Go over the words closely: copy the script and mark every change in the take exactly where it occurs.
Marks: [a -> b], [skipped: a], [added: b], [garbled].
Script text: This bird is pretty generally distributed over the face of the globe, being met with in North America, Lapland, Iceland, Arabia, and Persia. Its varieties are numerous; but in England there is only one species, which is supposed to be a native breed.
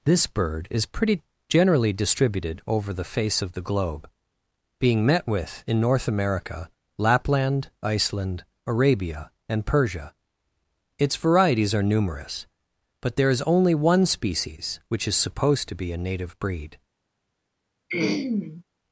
This bird is pretty generally distributed over the face of the globe, being met with in North America, Lapland, Iceland, Arabia, and Persia. Its varieties are numerous; but [skipped: in England] there is only one species, which is supposed to be a native breed.